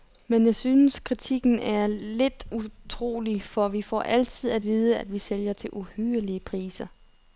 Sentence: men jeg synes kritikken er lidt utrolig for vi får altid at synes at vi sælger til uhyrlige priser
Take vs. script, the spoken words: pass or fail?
fail